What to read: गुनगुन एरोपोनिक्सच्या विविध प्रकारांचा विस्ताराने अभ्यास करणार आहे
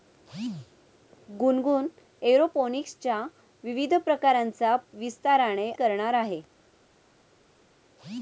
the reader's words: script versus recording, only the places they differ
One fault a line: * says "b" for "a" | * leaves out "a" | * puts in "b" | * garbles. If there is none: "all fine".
* leaves out "अभ्यास"